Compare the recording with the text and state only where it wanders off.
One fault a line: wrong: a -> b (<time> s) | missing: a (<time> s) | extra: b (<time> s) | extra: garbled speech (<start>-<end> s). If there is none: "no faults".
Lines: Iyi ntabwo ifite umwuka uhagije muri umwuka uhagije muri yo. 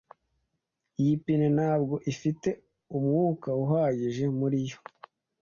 extra: pine (1.2 s)
missing: umwuka uhagije muri (4.6 s)